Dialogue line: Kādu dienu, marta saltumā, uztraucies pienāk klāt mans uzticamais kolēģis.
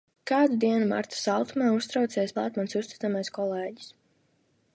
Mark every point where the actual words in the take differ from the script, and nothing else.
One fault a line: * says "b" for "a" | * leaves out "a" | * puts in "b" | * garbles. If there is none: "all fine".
* leaves out "pienāk"